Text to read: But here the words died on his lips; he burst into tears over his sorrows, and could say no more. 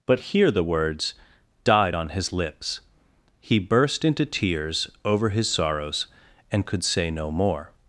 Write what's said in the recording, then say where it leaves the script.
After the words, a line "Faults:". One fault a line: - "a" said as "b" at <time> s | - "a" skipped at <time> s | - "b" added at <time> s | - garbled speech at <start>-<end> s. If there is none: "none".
But here the words died on his lips; he burst into tears over his sorrows, and could say no more.
Faults:
none